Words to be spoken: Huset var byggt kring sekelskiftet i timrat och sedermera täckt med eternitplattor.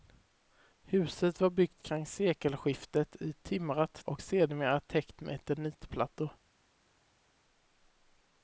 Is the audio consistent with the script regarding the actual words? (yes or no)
yes